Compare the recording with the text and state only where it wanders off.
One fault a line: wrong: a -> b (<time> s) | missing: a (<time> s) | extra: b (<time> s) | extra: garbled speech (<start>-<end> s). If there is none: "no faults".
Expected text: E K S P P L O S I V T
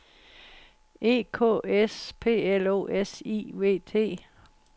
missing: P (2.5 s)